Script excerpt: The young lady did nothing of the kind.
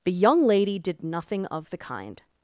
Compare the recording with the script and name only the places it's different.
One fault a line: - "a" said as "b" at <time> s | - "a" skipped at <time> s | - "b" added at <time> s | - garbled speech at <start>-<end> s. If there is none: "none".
none